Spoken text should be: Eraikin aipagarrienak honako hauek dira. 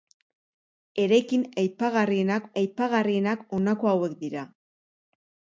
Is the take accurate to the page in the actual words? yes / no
no